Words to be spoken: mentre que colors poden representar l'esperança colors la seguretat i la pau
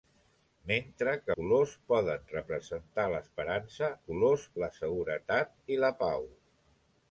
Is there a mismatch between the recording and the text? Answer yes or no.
no